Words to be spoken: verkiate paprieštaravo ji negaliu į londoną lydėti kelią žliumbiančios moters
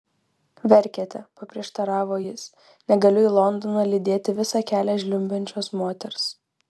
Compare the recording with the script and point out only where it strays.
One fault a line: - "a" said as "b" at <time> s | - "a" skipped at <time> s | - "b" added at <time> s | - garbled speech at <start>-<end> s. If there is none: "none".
- "ji" said as "jis" at 2.2 s
- "visą" added at 4.4 s